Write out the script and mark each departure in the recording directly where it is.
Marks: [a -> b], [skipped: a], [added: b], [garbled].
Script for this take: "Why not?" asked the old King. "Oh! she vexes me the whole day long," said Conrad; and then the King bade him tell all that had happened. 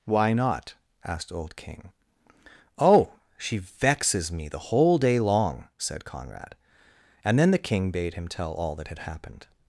"Why not?" asked [skipped: the] old King. "Oh! she vexes me the whole day long," said Conrad; and then the King bade him tell all that had happened.